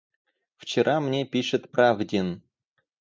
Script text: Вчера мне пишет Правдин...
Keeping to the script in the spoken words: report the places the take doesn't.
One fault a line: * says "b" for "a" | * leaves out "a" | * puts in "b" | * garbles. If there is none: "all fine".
all fine